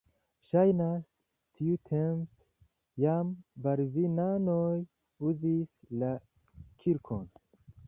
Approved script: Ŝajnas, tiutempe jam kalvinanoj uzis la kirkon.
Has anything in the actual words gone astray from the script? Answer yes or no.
no